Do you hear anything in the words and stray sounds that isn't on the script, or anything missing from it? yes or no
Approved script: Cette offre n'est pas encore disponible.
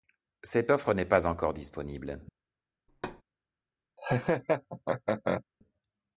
yes